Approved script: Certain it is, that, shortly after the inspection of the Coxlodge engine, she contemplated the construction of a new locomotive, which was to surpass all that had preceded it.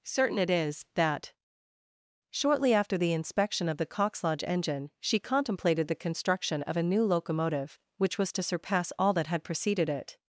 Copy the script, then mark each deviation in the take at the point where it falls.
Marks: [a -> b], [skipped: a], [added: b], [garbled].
Certain it is, that, shortly after the inspection of the Coxlodge engine, she contemplated the construction of a new locomotive, which was to surpass all that had preceded it.